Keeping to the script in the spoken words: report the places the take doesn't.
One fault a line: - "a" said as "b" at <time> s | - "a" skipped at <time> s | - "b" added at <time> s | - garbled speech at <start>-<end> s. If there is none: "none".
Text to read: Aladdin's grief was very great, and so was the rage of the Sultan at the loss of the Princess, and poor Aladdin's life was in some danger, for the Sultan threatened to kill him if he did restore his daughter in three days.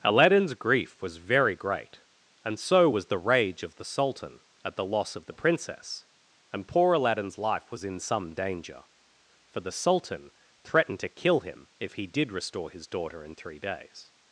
none